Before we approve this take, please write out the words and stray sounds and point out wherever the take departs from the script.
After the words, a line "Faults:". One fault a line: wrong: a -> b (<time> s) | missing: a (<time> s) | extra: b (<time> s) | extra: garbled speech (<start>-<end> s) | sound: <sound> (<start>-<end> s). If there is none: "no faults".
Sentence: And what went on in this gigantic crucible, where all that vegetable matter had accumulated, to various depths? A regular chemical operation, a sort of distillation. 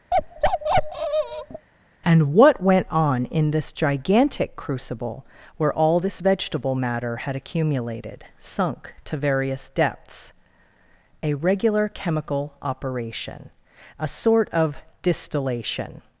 And what went on in this gigantic crucible, where all this vegetable matter had accumulated, sunk to various depths? A regular chemical operation, a sort of distillation.
Faults:
sound: bark (0.1-1.7 s)
wrong: that -> this (6.0 s)
extra: sunk (8.4 s)